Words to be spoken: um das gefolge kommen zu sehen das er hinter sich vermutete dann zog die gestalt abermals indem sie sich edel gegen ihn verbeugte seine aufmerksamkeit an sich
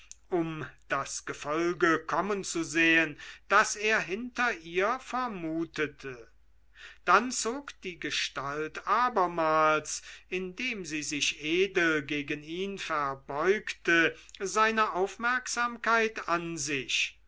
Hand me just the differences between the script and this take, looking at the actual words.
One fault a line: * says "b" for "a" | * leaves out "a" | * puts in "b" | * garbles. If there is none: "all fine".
* says "ihr" for "sich"